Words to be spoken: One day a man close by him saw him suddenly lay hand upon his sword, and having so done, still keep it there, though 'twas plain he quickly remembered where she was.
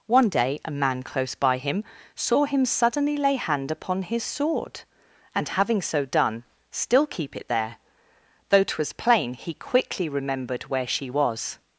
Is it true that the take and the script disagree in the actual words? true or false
false